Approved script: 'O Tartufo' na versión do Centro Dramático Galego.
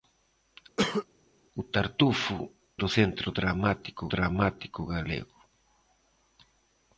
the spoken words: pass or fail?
fail